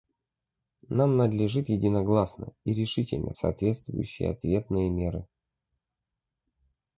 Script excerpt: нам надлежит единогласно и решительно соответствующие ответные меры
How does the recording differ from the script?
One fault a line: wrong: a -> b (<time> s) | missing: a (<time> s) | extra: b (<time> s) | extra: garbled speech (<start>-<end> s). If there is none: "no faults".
no faults